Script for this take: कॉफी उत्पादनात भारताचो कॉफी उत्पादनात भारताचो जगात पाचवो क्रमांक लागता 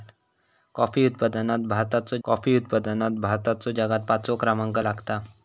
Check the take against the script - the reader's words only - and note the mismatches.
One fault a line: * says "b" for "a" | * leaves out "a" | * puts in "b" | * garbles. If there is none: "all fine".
all fine